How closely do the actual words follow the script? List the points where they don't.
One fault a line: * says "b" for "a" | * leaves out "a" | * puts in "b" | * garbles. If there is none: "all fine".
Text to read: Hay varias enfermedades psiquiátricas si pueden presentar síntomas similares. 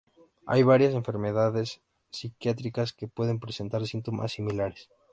* says "que" for "si"